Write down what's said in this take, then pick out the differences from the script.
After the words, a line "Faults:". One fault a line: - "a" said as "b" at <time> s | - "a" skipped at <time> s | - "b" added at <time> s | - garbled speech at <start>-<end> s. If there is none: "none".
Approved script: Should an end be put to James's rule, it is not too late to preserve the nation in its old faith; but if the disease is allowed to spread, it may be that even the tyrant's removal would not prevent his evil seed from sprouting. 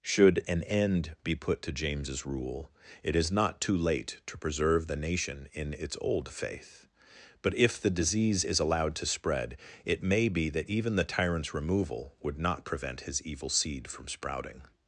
Should an end be put to James's rule, it is not too late to preserve the nation in its old faith; but if the disease is allowed to spread, it may be that even the tyrant's removal would not prevent his evil seed from sprouting.
Faults:
none